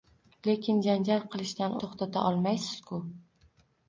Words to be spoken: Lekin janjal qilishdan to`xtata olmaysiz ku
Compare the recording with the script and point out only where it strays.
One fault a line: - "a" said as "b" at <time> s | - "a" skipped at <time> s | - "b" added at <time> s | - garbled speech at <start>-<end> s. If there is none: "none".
none